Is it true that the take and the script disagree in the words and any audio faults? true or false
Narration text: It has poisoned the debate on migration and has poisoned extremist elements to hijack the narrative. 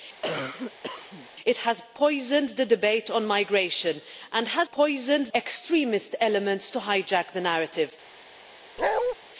true